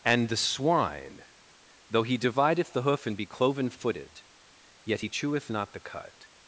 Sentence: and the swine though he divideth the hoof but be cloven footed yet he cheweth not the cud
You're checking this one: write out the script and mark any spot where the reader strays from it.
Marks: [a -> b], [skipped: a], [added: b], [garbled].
and the swine though he divideth the hoof [but -> and] be cloven footed yet he cheweth not the cud